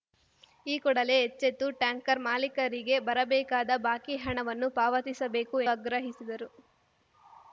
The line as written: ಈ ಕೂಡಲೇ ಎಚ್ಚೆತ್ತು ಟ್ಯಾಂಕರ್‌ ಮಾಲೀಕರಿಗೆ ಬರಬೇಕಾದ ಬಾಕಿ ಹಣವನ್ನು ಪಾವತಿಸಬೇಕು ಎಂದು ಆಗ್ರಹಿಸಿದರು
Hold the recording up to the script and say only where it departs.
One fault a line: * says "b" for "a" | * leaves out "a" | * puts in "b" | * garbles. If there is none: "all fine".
* leaves out "ಎಂದು"